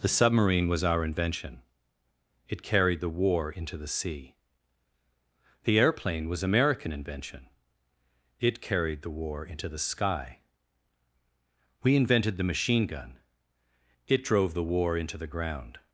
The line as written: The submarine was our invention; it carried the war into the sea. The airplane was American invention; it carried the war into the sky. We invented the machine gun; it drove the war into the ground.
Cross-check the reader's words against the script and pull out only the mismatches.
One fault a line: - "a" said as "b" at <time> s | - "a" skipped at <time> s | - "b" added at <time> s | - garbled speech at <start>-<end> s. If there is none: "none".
none